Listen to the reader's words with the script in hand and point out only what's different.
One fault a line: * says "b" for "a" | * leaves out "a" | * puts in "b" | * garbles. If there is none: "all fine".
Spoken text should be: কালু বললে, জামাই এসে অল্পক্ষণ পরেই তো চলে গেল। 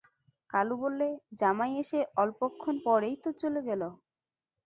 all fine